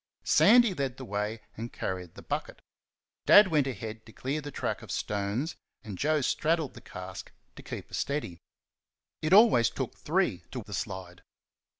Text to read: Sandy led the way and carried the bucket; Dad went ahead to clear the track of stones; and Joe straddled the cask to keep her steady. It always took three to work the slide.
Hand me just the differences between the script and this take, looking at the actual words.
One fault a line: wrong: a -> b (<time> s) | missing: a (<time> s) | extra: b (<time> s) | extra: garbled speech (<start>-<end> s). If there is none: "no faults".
missing: work (10.6 s)